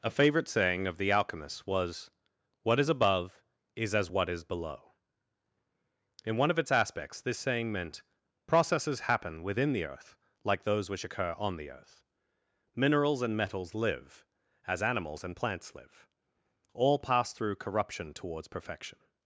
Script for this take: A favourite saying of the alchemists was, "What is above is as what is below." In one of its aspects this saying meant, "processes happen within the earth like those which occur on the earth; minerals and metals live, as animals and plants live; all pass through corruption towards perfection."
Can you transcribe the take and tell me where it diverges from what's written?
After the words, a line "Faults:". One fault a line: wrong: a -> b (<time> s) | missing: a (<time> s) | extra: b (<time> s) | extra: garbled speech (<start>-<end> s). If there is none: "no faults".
A favourite saying of the alchemists was, "What is above is as what is below." In one of its aspects this saying meant, "processes happen within the earth like those which occur on the earth; minerals and metals live, as animals and plants live; all pass through corruption towards perfection."
Faults:
no faults